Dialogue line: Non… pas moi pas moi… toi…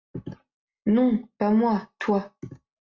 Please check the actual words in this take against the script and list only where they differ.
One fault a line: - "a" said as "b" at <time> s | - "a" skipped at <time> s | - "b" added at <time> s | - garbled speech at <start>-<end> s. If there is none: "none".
- "pas moi" skipped at 1.9 s